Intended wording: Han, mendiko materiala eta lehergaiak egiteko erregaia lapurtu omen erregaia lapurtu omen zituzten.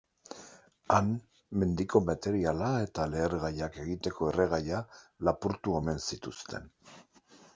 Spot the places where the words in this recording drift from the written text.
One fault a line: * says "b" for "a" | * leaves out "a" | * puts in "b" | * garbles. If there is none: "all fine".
* leaves out "erregaia lapurtu omen"